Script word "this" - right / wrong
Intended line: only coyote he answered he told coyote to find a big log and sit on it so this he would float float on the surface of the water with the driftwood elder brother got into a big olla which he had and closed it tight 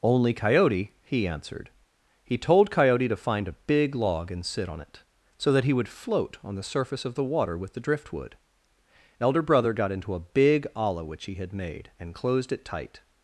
wrong